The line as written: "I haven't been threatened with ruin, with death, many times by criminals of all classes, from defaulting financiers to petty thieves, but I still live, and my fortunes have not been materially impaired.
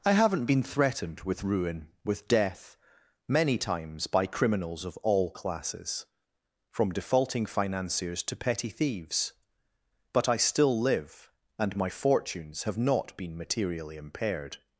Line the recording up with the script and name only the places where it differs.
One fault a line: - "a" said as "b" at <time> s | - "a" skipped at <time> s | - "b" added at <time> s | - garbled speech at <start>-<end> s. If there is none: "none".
none